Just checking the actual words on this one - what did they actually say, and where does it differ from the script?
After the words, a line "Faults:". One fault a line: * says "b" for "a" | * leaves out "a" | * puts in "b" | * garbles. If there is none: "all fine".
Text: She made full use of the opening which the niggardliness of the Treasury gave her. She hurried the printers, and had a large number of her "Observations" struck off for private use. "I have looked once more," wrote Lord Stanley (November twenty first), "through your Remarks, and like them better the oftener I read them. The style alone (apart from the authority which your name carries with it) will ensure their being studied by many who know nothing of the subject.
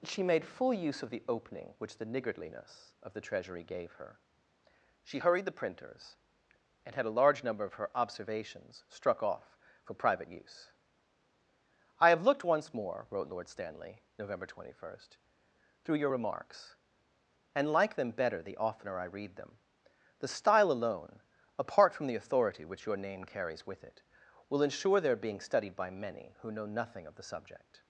She made full use of the opening which the niggardliness of the Treasury gave her. She hurried the printers, and had a large number of her "Observations" struck off for private use. "I have looked once more," wrote Lord Stanley (November twenty first), "through your Remarks, and like them better the oftener I read them. The style alone (apart from the authority which your name carries with it) will ensure their being studied by many who know nothing of the subject.
Faults:
all fine